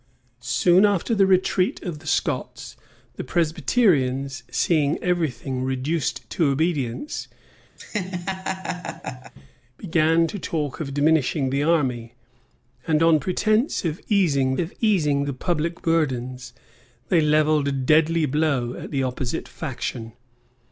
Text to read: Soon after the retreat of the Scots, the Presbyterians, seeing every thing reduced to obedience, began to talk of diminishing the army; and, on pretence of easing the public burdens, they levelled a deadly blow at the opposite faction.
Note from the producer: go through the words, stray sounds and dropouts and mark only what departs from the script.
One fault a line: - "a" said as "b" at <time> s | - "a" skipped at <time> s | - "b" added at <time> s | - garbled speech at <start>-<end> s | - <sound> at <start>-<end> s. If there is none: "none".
- laugh at 7.8-9.3 s
- "of easing" added at 14.6 s